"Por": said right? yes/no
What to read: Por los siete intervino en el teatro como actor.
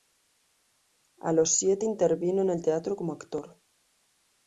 no